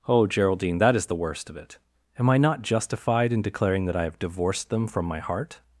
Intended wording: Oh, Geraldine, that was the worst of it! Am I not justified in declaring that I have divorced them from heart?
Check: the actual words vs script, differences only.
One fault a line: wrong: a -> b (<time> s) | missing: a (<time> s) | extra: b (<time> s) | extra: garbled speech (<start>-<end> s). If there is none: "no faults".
wrong: was -> is (0.9 s)
extra: my (5.0 s)